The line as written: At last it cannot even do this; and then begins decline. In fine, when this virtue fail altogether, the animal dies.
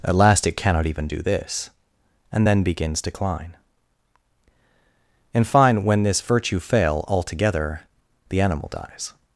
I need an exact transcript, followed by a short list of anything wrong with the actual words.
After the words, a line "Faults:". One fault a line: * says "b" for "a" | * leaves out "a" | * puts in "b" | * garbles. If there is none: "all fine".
At last it cannot even do this; and then begins decline. In fine, when this virtue fail altogether, the animal dies.
Faults:
all fine